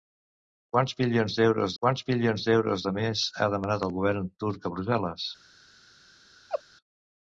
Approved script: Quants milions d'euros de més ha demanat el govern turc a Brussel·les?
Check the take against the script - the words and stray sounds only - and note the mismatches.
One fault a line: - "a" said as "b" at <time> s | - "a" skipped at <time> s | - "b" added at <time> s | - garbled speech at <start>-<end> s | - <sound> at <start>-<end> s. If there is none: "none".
- "quants milions d'euros" added at 1.8 s
- laugh at 6.5-6.6 s